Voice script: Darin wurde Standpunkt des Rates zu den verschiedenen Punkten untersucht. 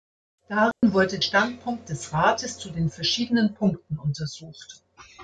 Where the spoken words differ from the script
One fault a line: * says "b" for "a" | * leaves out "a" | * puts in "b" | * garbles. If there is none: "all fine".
all fine